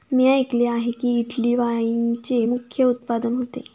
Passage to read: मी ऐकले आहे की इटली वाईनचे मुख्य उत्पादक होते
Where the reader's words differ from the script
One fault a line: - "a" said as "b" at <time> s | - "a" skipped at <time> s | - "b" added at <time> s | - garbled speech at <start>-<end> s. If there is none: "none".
none